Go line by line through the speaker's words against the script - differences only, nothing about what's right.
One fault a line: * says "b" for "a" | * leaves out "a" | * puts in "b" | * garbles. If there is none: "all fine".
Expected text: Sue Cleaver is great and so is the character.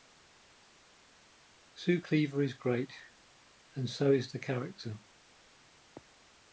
all fine